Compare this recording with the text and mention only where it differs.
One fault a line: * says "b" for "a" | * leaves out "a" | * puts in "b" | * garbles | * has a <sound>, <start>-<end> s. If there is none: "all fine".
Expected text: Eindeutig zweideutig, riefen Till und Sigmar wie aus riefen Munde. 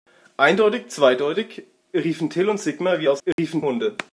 * has a dropout, 3.3-3.4 s